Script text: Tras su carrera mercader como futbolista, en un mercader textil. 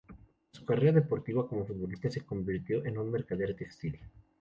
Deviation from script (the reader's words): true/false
true